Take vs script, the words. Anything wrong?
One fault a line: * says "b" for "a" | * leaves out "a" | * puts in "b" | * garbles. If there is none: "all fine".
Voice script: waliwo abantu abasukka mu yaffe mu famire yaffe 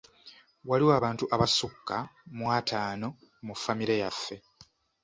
* says "ataano" for "yaffe"